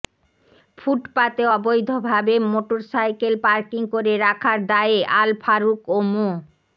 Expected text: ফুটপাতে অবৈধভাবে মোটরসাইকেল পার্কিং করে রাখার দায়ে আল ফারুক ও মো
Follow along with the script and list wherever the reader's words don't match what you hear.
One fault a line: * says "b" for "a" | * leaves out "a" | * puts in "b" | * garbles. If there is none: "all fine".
all fine